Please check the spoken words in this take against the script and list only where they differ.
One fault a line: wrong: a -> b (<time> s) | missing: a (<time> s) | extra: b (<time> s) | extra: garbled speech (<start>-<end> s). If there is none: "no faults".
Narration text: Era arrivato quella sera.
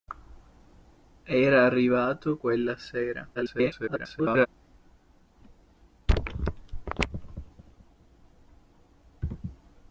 extra: garbled speech (3.3-4.5 s)